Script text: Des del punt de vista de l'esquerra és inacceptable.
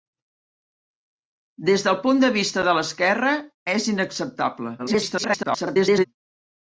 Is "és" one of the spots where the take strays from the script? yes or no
no